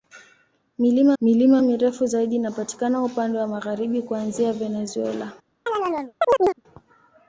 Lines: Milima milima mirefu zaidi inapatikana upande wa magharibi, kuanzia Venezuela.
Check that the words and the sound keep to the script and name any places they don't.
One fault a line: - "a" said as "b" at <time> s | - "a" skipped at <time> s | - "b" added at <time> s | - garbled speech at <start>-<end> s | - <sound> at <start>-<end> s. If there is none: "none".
- chirp at 5.7-6.6 s